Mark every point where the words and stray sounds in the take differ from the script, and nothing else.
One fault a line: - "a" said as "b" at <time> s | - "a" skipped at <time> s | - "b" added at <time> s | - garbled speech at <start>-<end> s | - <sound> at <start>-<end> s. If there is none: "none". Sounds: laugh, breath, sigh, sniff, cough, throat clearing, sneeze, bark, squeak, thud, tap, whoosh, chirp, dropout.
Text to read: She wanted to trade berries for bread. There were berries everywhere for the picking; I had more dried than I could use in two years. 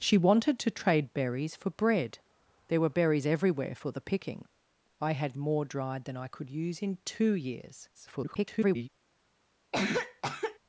- garbled speech at 7.9-8.9 s
- cough at 9.7-10.6 s